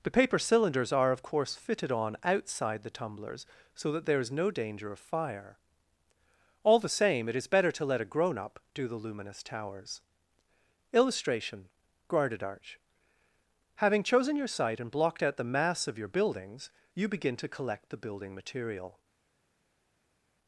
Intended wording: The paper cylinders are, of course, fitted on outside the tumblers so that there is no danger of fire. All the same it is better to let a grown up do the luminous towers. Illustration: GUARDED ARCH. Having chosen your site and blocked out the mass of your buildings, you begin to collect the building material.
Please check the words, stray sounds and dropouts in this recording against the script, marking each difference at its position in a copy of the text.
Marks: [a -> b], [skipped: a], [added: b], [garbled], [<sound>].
The paper cylinders are, of course, fitted on outside the tumblers so that there is no danger of fire. All the same it is better to let a grown up do the luminous towers. Illustration: GUARDED ARCH. Having chosen your site and blocked out the mass of your buildings, you begin to collect the building material.